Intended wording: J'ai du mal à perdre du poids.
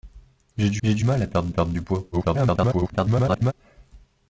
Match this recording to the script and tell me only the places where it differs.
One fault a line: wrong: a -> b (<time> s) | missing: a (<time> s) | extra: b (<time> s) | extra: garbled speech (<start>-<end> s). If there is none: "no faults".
extra: j'ai du (0.8 s)
extra: perdre (1.5 s)
extra: garbled speech (2.1-3.5 s)